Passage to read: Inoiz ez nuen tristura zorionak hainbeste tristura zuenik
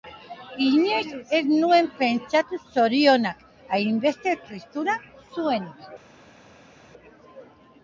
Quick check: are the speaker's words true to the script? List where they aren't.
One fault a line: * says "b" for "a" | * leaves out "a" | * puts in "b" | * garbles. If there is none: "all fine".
* says "pentsatu" for "tristura"